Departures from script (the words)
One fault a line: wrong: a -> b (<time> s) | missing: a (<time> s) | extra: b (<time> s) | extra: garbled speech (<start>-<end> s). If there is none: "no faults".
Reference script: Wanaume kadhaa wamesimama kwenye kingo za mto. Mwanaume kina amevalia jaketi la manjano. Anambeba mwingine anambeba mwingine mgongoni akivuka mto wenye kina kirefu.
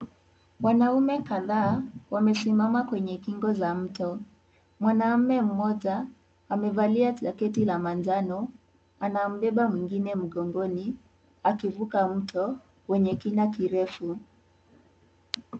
wrong: kina -> mmoja (5.4 s)
missing: anambeba mwingine (10.2 s)